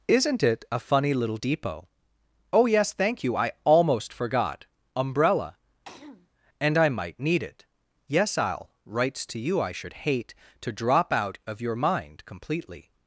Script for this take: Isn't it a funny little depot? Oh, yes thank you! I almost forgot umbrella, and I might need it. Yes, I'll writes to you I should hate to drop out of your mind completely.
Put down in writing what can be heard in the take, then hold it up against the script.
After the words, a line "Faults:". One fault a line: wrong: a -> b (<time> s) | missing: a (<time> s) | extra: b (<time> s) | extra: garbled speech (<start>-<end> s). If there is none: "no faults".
Isn't it a funny little depot? Oh, yes thank you! I almost forgot umbrella, and I might need it. Yes, I'll writes to you I should hate to drop out of your mind completely.
Faults:
no faults